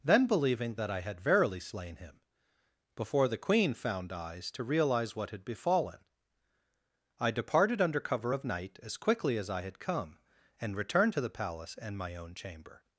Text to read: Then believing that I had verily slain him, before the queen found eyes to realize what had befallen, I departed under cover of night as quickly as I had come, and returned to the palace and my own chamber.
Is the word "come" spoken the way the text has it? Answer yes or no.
yes